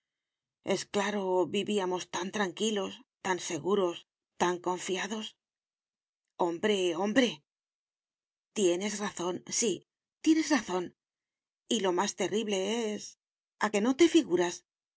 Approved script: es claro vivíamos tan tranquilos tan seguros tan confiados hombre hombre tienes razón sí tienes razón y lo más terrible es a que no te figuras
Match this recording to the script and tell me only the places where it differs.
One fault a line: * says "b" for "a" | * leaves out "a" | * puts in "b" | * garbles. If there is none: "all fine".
all fine